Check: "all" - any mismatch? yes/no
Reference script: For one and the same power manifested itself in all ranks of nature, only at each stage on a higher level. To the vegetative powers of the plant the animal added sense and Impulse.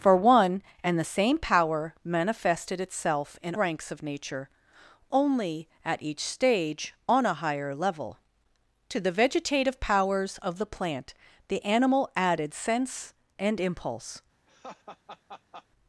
yes